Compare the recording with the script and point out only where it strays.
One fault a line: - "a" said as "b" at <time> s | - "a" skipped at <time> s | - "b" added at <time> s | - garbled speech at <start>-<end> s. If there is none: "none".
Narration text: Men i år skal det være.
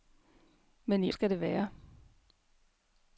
- "år" skipped at 1.1 s